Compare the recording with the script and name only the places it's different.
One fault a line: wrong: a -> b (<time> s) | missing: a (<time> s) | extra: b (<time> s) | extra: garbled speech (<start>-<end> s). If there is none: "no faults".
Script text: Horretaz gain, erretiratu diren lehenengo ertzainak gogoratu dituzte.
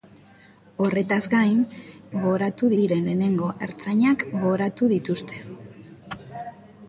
wrong: erretiratu -> gogoratu (2.1 s)